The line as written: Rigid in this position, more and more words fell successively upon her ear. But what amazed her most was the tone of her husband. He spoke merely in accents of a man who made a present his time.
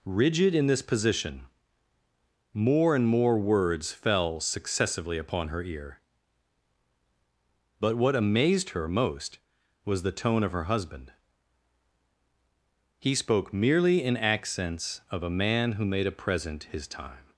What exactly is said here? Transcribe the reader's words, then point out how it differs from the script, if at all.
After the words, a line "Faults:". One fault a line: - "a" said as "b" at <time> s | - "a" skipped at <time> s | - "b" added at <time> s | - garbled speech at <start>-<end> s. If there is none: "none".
Rigid in this position, more and more words fell successively upon her ear. But what amazed her most was the tone of her husband. He spoke merely in accents of a man who made a present his time.
Faults:
none